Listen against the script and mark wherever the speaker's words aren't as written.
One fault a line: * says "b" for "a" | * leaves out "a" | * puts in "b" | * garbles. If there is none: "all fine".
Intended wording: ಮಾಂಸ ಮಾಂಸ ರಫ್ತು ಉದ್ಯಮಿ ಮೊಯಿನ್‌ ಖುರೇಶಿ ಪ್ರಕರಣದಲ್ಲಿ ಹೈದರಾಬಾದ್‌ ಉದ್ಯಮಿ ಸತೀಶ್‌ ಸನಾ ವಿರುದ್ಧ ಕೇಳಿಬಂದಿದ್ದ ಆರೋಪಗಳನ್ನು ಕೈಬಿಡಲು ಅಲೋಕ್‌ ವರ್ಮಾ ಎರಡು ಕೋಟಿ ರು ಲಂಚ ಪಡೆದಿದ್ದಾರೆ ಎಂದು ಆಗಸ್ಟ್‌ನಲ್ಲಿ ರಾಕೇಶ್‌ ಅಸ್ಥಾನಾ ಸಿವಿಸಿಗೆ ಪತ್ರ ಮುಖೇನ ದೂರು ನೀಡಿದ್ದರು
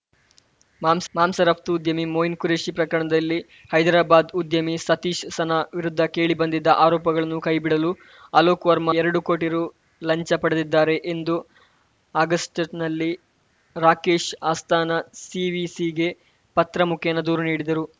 all fine